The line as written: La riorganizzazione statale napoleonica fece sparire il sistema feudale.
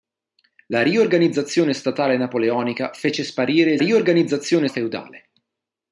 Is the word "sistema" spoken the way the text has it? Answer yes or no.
no